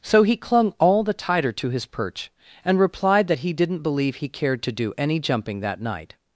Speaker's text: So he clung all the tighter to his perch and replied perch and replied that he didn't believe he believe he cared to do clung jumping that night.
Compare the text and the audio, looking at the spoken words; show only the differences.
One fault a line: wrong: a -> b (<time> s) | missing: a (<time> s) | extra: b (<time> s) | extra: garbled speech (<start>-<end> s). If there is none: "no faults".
missing: perch and replied (3.3 s)
missing: believe he (4.3 s)
wrong: clung -> any (5.0 s)